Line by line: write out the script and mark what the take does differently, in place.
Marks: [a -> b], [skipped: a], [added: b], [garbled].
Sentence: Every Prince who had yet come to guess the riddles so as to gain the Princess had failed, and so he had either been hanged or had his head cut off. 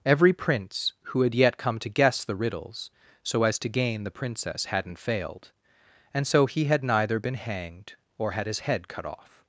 Every Prince who had yet come to guess the riddles so as to gain the Princess [had -> hadn't] failed, and so he had [either -> neither] been hanged or had his head cut off.